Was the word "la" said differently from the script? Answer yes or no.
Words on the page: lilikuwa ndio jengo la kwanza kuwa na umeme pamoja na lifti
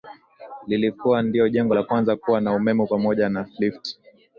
no